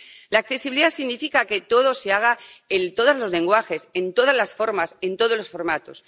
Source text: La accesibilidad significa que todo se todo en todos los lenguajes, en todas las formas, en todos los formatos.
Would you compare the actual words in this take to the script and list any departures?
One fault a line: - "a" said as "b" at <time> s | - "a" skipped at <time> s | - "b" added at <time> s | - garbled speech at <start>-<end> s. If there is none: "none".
- "todo" said as "haga" at 2.1 s